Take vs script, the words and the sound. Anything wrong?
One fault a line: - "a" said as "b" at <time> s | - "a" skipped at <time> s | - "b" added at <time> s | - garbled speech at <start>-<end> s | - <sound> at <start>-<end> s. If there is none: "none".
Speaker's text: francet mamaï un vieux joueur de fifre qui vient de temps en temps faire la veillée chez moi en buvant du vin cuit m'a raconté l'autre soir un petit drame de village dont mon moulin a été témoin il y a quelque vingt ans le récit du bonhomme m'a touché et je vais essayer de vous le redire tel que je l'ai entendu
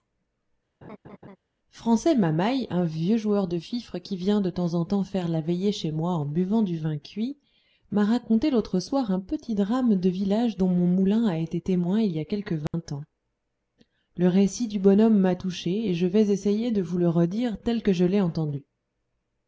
- laugh at 0.8-1.4 s
- dropout at 12.7-12.7 s